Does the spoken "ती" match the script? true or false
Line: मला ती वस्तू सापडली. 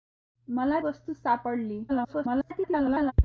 false